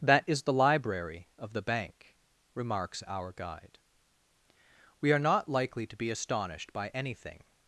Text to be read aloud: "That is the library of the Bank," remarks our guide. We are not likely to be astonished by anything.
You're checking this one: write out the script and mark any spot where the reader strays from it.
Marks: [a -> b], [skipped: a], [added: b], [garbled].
"That is the library of the Bank," remarks our guide. We are not likely to be astonished by anything.